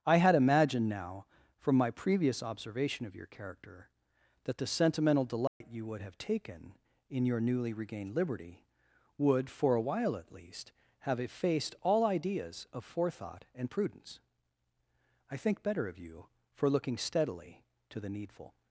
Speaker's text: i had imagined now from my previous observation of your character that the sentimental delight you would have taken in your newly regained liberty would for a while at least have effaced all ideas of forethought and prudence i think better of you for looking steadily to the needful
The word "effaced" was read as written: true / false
true